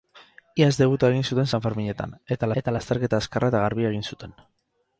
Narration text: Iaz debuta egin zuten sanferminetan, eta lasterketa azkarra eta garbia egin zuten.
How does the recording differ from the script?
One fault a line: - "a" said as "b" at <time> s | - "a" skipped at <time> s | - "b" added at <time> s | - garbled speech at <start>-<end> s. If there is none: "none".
- "eta" added at 2.6 s